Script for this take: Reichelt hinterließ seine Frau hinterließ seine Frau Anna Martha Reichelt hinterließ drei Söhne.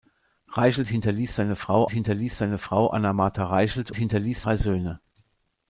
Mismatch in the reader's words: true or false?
false